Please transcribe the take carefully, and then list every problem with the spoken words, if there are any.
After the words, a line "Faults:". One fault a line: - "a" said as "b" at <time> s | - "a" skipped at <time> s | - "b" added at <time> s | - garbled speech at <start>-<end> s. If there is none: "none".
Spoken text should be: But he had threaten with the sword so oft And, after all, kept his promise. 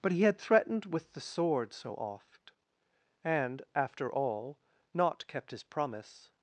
But he had threatened with the sword so oft And, after all, not kept his promise.
Faults:
- "threaten" said as "threatened" at 0.4 s
- "not" added at 4.9 s